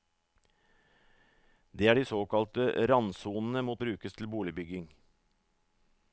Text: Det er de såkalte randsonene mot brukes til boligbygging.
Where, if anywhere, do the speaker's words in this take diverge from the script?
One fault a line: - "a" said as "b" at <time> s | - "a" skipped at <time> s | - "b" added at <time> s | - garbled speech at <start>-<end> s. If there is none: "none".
none